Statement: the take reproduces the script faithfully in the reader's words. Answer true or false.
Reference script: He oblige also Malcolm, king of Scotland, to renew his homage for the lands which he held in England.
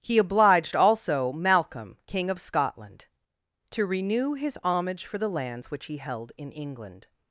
false